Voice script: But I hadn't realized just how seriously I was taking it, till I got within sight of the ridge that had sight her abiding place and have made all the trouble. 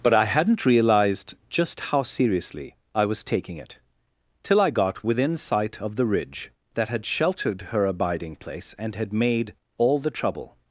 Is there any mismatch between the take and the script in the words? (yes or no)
yes